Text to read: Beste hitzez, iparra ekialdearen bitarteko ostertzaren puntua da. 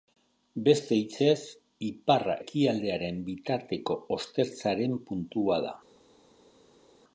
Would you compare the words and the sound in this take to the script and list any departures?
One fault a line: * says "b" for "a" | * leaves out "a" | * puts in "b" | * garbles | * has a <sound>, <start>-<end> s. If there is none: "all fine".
all fine